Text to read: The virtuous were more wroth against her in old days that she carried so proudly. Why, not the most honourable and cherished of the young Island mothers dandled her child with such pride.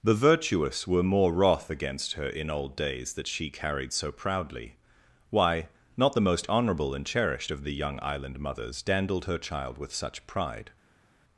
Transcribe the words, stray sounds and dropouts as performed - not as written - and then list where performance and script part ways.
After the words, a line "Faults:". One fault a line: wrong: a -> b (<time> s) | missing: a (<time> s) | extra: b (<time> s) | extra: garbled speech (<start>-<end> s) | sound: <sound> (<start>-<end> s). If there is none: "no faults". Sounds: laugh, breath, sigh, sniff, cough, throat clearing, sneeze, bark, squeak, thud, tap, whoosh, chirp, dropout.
The virtuous were more wroth against her in old days that she carried so proudly. Why, not the most honourable and cherished of the young Island mothers dandled her child with such pride.
Faults:
no faults